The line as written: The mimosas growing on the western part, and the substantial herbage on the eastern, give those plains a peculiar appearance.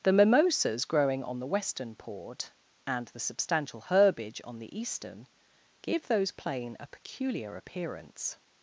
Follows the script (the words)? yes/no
no